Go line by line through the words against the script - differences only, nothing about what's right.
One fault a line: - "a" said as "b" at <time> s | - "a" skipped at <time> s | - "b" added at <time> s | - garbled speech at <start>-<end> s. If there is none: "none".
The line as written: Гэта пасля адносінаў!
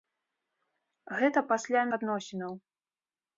none